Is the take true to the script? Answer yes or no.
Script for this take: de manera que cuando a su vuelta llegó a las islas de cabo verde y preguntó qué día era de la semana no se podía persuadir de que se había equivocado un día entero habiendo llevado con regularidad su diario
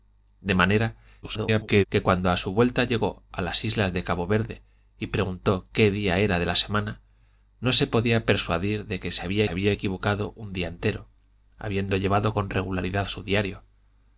no